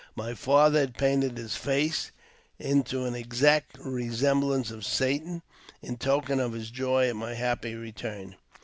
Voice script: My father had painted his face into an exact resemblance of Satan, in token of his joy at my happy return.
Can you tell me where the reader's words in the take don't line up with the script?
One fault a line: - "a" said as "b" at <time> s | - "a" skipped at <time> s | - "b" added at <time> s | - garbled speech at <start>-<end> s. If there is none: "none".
none